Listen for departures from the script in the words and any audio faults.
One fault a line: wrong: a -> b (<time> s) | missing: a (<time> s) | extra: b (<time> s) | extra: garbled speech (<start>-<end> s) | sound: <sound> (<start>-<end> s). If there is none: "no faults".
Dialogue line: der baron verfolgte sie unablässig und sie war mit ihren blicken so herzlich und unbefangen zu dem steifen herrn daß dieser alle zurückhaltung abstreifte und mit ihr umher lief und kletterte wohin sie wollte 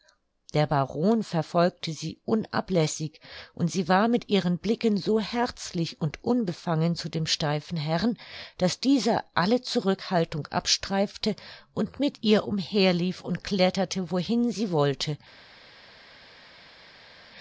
no faults